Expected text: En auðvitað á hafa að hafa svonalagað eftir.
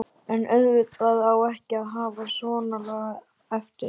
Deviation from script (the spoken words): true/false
true